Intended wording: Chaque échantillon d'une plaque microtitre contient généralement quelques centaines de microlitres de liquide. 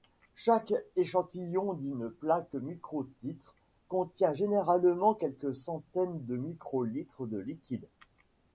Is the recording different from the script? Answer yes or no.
no